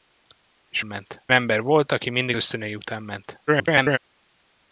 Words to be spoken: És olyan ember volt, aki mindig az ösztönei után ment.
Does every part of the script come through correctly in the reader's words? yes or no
no